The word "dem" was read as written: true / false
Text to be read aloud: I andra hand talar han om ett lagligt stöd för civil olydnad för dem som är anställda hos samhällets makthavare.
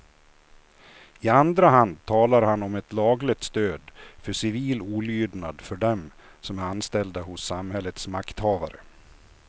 true